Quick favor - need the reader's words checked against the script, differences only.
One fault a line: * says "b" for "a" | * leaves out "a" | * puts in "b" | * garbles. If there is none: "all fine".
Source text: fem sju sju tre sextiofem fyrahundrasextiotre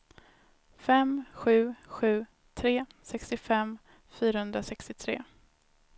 all fine